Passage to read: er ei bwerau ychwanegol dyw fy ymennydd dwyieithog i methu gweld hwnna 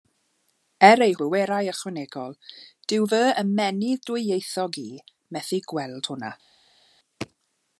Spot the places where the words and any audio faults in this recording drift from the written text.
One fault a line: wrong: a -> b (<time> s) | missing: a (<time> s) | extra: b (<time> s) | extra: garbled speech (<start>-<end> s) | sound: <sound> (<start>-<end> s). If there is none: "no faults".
no faults